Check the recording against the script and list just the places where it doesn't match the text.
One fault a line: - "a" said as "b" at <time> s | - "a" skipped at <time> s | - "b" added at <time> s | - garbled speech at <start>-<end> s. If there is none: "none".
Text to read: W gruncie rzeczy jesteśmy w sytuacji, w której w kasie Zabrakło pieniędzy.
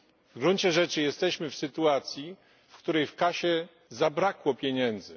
none